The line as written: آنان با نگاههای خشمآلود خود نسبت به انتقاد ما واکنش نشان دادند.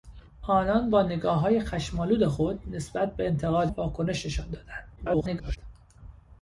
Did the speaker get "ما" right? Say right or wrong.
wrong